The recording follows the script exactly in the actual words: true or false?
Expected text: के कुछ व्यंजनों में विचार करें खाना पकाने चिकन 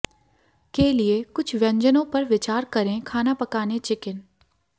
false